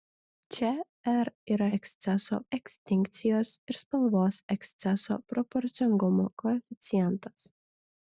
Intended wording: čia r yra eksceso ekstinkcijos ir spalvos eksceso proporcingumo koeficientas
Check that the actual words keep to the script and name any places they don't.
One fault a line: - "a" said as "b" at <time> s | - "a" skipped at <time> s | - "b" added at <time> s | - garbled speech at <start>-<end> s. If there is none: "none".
none